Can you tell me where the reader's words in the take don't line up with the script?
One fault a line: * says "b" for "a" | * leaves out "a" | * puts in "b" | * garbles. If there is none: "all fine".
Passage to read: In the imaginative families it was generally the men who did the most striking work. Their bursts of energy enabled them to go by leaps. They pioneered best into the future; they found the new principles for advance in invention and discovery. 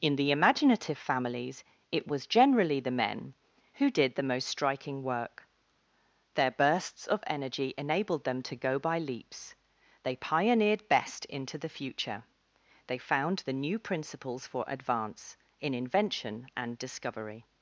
all fine